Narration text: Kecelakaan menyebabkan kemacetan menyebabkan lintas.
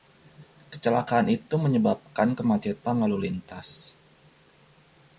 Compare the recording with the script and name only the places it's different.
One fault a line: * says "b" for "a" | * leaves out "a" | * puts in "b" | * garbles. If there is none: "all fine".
* puts in "itu"
* says "lalu" for "menyebabkan"